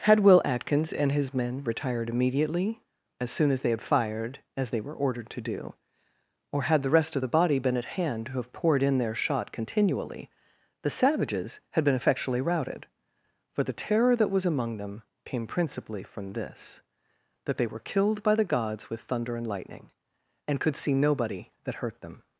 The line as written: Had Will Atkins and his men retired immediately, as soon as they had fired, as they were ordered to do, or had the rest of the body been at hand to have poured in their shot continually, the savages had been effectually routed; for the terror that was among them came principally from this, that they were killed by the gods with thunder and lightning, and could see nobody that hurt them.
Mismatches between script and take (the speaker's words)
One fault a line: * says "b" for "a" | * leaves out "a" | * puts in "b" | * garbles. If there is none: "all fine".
all fine